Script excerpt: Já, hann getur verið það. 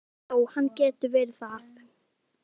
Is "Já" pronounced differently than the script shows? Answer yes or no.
no